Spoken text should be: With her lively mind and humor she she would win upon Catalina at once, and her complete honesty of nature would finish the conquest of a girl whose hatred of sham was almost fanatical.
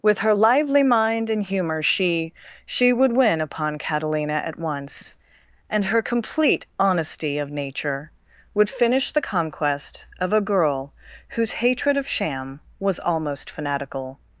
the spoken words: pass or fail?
pass